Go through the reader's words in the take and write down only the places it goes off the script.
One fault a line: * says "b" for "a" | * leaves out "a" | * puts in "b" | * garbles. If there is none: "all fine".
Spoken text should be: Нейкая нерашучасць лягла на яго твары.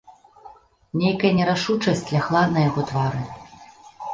all fine